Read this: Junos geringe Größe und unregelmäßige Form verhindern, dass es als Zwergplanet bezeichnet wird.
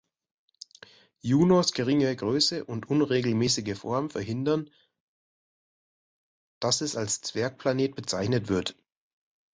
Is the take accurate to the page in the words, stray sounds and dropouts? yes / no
yes